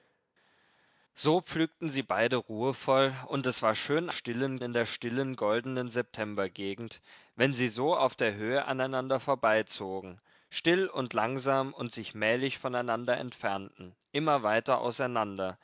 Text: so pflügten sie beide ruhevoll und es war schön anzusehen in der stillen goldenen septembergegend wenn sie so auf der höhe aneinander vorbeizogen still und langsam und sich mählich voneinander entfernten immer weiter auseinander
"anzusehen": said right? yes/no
no